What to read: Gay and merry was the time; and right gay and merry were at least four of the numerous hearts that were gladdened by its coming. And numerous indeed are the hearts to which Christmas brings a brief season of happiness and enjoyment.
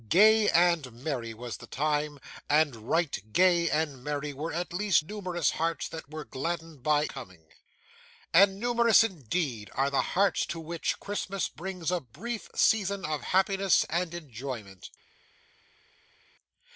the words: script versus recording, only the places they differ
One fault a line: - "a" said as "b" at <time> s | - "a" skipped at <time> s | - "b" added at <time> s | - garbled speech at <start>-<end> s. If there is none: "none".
- "four of the" skipped at 5.0 s
- "its" skipped at 7.0 s